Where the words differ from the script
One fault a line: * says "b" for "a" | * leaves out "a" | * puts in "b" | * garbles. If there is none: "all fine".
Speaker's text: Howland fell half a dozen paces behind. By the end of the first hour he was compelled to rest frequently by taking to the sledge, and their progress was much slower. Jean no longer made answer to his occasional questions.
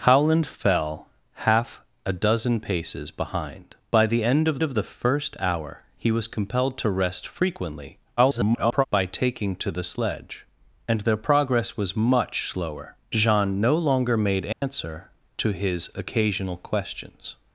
* puts in "of"
* garbles